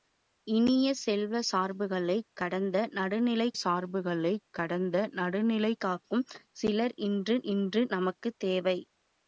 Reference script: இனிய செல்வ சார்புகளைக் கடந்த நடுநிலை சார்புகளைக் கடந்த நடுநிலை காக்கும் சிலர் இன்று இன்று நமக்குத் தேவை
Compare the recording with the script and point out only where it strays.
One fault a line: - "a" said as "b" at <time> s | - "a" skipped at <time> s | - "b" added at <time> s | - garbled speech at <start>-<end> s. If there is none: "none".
none